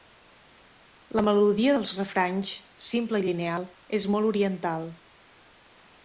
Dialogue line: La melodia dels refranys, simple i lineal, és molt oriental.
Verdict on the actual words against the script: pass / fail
pass